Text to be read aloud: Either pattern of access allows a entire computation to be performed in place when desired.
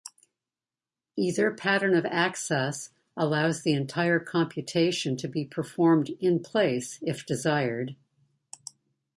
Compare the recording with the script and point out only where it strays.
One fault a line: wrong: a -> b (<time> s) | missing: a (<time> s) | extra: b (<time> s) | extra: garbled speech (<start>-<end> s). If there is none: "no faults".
wrong: a -> the (3.6 s)
wrong: when -> if (7.0 s)